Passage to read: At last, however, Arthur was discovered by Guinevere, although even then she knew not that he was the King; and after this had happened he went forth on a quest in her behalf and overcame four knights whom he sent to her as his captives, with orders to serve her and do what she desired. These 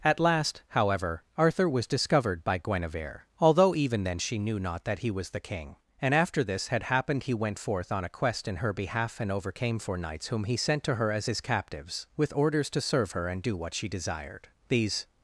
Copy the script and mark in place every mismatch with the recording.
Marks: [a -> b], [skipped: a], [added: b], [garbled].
At last, however, Arthur was discovered by Guinevere, although even then she knew not that he was the King; and after this had happened he went forth on a quest in her behalf and overcame four knights whom he sent to her as his captives, with orders to serve her and do what she desired. These